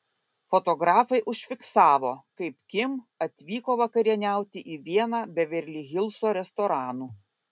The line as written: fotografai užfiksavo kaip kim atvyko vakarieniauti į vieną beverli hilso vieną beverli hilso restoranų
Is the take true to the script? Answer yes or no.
no